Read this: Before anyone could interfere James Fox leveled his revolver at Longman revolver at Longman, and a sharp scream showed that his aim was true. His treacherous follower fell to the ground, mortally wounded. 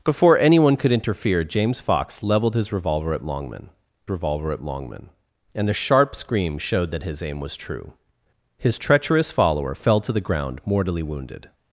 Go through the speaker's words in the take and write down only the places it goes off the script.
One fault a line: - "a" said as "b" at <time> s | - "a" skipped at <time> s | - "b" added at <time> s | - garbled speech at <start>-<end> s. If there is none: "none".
none